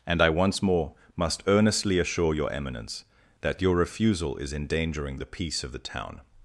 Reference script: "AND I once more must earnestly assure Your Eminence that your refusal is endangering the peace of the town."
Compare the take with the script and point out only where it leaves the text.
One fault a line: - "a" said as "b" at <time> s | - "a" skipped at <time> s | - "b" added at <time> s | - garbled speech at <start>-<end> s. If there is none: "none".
none